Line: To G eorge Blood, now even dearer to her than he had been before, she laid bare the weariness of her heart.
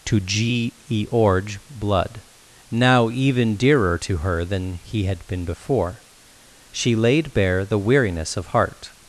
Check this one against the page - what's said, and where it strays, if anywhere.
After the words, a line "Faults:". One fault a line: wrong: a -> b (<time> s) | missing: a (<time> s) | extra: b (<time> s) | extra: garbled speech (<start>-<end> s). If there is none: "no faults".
To G eorge Blood, now even dearer to her than he had been before, she laid bare the weariness of heart.
Faults:
missing: her (8.5 s)